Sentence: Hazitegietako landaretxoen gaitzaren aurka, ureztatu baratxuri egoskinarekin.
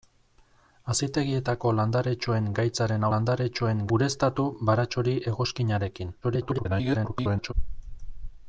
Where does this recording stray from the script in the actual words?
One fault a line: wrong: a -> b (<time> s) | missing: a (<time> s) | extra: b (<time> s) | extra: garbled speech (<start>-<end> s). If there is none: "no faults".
wrong: aurka -> landaretxoen (3.1 s)
extra: garbled speech (6.2-7.5 s)